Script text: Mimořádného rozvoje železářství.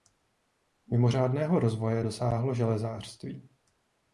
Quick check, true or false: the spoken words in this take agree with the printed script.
false